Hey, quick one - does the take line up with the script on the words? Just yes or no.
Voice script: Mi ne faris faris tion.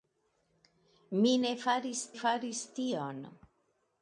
yes